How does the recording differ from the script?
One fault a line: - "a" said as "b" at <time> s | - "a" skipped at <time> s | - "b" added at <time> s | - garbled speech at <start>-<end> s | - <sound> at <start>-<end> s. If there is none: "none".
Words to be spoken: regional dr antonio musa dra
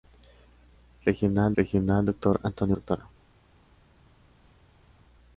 - "regional" added at 1.6 s
- "musa" skipped at 2.8 s